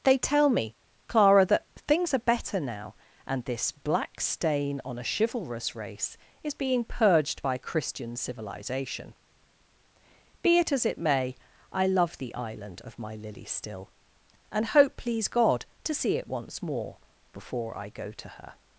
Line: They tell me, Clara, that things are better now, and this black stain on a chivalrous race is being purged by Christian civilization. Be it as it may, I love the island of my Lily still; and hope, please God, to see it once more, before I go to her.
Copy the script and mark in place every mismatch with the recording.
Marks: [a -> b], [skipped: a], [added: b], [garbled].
They tell me, Clara, that things are better now, and this black stain on a chivalrous race is being purged by Christian civilization. Be it as it may, I love the island of my Lily still; and hope, please God, to see it once more, before I go to her.